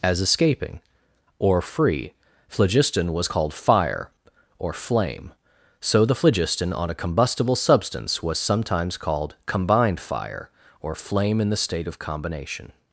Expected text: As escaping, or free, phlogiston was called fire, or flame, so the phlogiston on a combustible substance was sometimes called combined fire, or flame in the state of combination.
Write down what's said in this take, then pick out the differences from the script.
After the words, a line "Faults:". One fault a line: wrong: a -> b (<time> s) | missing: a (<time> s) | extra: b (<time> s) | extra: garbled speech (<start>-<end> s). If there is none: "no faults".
As escaping, or free, phlogiston was called fire, or flame, so the phlogiston on a combustible substance was sometimes called combined fire, or flame in the state of combination.
Faults:
no faults